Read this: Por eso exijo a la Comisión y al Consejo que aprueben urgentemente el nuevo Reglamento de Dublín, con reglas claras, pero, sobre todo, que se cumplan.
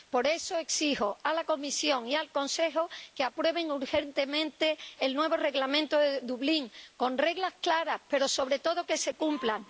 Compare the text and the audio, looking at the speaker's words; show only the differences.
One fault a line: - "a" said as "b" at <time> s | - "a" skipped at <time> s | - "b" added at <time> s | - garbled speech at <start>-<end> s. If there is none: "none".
none